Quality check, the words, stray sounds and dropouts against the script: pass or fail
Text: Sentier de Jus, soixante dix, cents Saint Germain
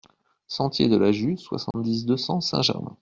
fail